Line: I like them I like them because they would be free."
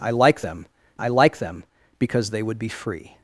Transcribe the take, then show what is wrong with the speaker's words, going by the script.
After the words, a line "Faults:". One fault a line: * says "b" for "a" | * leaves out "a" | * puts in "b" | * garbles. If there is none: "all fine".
I like them I like them because they would be free."
Faults:
all fine